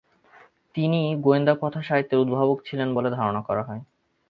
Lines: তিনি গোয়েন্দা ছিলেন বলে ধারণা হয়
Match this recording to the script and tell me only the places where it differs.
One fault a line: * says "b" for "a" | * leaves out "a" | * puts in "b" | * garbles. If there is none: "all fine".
* puts in "কথাসাহিত্যের উদ্ভাবক"
* puts in "করা"